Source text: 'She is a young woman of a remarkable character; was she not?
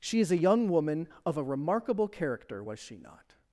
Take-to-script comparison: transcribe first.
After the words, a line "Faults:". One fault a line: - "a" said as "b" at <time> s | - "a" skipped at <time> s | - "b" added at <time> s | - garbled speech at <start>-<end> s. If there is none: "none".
'She is a young woman of a remarkable character; was she not?
Faults:
none